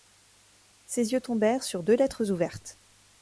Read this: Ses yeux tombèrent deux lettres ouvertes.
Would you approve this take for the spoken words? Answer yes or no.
no